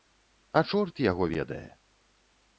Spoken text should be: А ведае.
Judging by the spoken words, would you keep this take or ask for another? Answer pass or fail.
fail